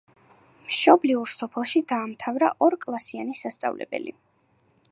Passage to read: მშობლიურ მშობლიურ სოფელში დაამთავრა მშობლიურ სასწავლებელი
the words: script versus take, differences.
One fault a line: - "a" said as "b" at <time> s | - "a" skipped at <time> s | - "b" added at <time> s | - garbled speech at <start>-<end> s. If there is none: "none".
- "მშობლიურ" skipped at 1.3 s
- "მშობლიურ" said as "ორკლასიანი" at 2.7 s